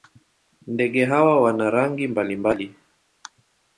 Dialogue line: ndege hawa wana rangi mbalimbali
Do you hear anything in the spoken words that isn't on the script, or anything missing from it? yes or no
no